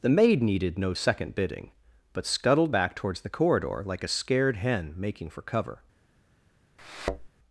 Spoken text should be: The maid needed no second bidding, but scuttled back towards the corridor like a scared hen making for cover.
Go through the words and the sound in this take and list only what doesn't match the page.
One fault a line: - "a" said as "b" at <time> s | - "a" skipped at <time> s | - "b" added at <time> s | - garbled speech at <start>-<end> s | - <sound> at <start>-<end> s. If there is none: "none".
- thud at 6.8-7.3 s